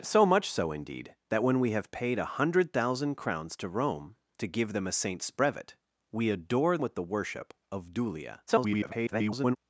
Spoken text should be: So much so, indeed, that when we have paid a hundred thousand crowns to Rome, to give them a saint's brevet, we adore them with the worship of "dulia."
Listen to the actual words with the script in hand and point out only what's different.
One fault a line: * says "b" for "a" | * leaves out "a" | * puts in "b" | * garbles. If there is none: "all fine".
* leaves out "them"
* garbles